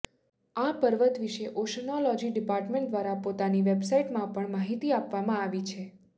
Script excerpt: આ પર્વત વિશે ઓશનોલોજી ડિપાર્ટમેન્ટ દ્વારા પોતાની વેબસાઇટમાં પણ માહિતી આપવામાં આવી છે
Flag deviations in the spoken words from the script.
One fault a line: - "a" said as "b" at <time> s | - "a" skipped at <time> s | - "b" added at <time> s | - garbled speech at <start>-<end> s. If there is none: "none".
none